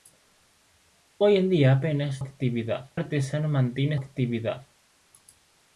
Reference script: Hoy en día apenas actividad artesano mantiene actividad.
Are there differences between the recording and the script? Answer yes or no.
no